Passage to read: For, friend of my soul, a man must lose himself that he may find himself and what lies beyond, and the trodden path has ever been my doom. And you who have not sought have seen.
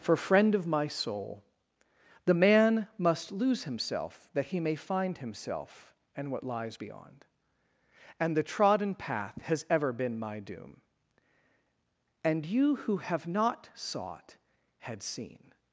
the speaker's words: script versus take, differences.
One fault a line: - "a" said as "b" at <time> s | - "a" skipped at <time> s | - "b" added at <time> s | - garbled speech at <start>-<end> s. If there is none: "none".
- "a" said as "the" at 2.2 s
- "have" said as "had" at 14.8 s